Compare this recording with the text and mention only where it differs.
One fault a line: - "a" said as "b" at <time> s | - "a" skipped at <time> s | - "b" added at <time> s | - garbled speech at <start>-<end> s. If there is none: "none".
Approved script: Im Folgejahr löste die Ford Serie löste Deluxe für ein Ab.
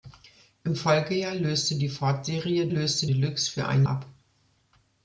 none